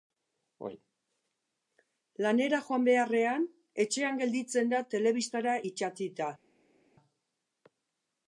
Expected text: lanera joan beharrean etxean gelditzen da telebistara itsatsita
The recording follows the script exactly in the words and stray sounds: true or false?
true